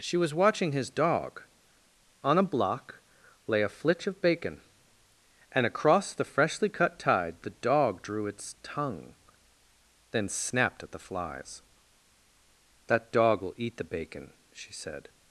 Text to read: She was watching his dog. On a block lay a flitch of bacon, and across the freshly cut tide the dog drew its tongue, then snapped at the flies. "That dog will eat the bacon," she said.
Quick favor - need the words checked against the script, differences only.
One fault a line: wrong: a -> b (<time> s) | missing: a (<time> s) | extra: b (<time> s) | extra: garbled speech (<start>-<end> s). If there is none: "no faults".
no faults